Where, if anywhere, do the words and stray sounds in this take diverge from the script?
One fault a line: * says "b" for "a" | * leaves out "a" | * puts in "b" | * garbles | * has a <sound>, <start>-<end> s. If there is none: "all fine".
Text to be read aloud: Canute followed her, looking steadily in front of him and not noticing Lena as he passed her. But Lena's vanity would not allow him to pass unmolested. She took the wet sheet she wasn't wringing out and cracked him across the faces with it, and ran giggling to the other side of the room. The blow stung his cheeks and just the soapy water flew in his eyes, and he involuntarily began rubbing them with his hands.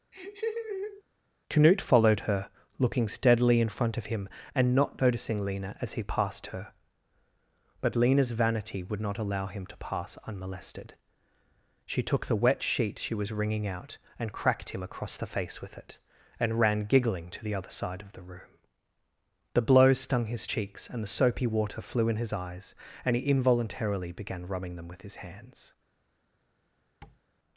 * has a laugh, 0.1-1.0 s
* says "was" for "wasn't"
* says "face" for "faces"
* leaves out "just"
* has a tap, 27.0-27.2 s